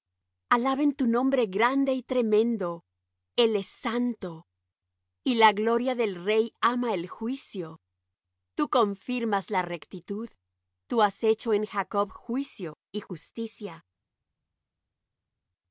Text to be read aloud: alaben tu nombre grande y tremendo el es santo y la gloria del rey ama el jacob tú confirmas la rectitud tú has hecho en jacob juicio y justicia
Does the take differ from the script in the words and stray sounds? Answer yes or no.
yes